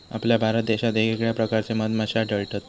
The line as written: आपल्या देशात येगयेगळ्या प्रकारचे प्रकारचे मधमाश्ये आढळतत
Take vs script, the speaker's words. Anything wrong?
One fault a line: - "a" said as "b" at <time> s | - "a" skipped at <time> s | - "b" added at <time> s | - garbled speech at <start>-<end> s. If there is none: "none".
- "भारत" added at 0.4 s
- "प्रकारचे" skipped at 1.7 s